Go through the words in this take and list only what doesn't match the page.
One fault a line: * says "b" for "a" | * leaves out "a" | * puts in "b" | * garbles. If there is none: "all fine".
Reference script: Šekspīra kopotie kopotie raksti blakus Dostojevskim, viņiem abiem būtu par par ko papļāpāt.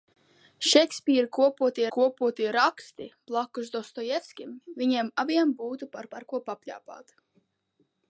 all fine